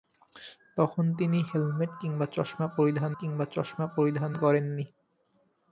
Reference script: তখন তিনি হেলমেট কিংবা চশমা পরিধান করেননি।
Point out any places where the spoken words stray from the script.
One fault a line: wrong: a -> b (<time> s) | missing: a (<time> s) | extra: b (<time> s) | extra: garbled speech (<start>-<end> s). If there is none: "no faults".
extra: কিংবা চশমা পরিধান (3.2 s)